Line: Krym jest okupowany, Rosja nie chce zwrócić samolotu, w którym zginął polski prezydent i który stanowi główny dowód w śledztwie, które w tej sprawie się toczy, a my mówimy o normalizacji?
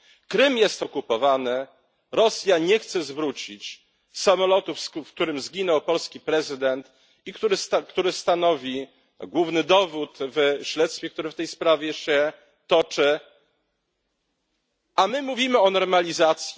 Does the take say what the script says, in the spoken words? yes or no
yes